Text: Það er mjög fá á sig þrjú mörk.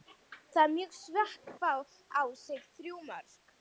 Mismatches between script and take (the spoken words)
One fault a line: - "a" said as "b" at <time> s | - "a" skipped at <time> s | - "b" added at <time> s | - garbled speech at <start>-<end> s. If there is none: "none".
none